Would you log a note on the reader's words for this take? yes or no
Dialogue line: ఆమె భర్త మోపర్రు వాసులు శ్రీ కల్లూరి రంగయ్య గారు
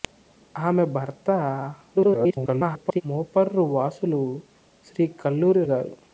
yes